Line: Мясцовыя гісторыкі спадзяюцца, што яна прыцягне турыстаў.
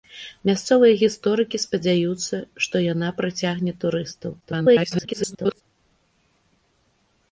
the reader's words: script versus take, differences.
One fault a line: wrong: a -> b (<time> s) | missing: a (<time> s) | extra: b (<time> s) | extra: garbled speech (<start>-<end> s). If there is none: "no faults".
extra: garbled speech (4.4-5.6 s)